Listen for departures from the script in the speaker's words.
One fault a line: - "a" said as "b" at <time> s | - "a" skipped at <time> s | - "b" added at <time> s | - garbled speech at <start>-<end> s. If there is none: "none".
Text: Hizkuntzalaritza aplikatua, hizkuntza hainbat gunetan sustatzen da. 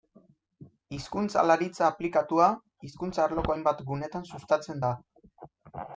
- "arloko" added at 3.2 s